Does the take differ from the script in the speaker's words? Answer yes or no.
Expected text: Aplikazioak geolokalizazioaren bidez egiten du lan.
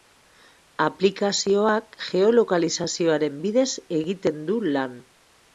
no